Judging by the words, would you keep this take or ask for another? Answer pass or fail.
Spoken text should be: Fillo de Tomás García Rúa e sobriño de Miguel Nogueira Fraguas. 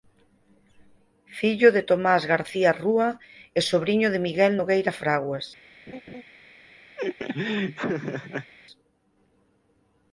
pass